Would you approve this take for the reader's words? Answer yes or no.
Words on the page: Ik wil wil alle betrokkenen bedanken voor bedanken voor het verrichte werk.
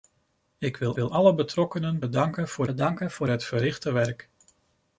yes